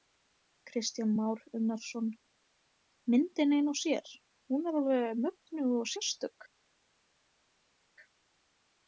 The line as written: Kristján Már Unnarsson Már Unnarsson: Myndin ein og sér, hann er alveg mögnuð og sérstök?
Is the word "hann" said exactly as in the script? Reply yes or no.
no